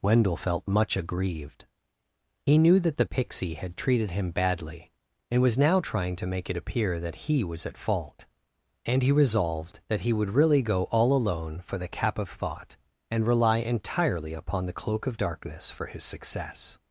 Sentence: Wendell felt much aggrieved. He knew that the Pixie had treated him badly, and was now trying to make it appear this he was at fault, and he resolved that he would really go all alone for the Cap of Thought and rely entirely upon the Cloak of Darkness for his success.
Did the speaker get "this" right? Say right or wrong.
wrong